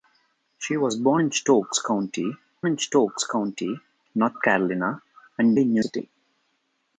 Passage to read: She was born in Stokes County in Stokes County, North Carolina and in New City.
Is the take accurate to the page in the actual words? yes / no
yes